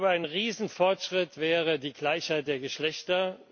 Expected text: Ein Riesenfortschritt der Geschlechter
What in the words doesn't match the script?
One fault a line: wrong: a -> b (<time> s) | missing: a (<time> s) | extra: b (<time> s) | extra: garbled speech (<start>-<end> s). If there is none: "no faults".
extra: wäre die Gleichheit (1.4 s)